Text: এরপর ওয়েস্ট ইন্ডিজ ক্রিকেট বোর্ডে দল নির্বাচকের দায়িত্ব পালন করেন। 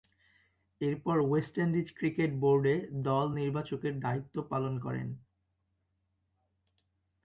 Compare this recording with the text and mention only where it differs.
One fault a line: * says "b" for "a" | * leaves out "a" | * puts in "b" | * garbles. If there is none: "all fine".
all fine